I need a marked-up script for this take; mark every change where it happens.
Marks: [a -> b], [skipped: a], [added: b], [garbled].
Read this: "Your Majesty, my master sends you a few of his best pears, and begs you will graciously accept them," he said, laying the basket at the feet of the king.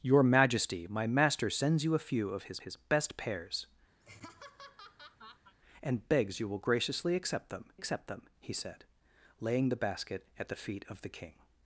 "Your Majesty, my master sends you a few of his [added: his] best pears, and begs you will graciously accept them," [added: accept them] he said, laying the basket at the feet of the king.